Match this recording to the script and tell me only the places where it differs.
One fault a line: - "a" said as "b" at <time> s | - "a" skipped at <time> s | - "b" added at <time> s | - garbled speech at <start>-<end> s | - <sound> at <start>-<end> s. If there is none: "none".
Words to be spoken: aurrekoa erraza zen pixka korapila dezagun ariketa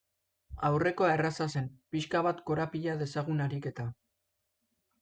- "bat" added at 2.3 s